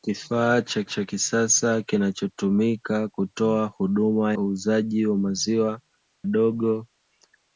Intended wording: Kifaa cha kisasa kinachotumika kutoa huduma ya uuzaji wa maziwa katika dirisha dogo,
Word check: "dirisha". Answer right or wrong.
wrong